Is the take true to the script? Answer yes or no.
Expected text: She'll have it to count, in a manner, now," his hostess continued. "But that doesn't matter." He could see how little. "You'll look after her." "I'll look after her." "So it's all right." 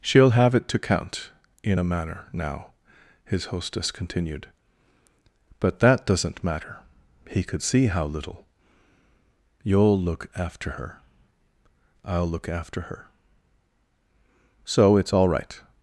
yes